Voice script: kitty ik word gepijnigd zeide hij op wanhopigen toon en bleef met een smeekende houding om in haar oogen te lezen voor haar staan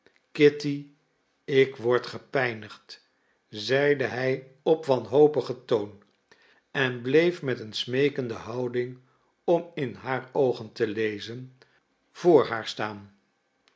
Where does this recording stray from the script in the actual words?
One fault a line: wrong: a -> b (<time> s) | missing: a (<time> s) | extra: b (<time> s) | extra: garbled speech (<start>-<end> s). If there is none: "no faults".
no faults